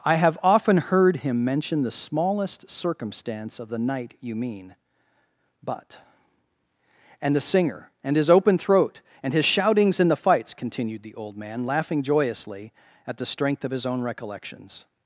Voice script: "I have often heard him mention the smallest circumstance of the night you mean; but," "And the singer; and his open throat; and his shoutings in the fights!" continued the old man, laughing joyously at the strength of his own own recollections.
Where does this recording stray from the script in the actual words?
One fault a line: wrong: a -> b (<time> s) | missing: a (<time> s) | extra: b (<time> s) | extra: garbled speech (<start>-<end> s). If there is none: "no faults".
missing: own (14.0 s)